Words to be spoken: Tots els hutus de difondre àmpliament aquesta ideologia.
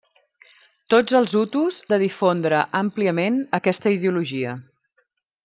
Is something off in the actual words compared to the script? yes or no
no